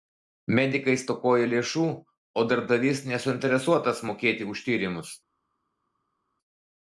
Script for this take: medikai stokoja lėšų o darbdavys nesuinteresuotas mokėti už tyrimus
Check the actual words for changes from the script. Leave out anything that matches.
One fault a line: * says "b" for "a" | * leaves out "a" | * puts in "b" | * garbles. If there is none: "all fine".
all fine